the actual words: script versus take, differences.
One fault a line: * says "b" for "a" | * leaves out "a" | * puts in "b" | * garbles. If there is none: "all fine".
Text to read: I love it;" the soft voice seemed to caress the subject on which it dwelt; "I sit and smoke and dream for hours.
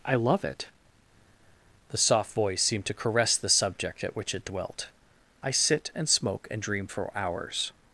* says "at" for "on"